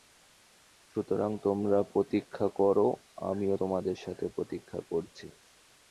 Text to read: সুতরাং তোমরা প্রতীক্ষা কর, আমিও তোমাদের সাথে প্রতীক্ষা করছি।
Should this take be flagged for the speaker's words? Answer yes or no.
no